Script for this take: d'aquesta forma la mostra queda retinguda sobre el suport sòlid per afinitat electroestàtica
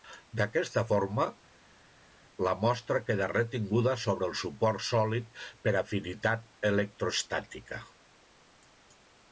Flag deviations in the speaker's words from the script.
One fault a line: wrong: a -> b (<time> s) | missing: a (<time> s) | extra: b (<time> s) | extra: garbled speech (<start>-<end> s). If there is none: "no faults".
no faults